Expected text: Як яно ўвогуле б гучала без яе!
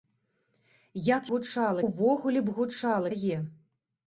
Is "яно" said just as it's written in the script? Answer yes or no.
no